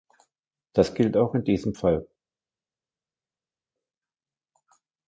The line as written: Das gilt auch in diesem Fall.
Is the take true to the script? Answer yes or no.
yes